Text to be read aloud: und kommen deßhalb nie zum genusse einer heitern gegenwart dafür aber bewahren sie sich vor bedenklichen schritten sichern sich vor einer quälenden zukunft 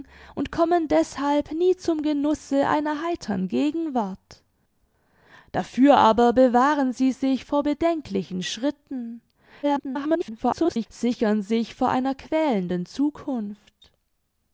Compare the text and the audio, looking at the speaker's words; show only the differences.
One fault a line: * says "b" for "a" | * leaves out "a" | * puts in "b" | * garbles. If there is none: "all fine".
* garbles